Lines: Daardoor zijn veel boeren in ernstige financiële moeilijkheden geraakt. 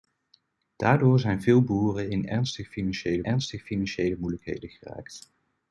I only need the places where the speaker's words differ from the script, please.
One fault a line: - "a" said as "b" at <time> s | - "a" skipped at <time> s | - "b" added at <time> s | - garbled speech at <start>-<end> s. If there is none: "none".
- "ernstige financiële" added at 3.2 s